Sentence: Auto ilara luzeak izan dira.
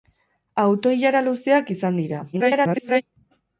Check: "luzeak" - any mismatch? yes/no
no